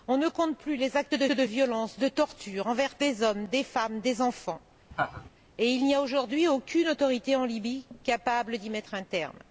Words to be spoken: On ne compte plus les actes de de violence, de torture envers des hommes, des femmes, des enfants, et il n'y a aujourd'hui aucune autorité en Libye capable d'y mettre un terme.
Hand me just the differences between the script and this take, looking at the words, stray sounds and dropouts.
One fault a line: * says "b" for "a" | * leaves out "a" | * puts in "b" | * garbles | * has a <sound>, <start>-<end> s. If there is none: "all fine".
* has a laugh, 4.9-5.3 s